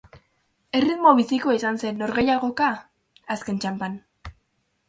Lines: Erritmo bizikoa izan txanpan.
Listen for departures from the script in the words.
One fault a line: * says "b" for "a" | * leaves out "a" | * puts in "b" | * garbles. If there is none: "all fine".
* puts in "zen norgehiagoka azken"